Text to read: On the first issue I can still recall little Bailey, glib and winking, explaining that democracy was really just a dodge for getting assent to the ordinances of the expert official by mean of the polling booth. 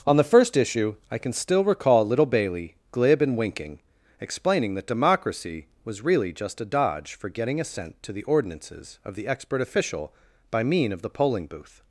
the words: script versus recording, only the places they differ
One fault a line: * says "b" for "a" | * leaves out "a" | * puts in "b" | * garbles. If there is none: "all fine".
all fine